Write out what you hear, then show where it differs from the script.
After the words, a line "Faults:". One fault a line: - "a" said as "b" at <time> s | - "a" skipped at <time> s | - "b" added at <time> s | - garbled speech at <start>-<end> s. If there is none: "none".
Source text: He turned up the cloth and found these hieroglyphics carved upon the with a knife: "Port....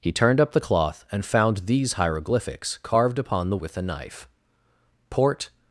He turned up the cloth and found these hieroglyphics carved upon the with a knife: "Port....
Faults:
none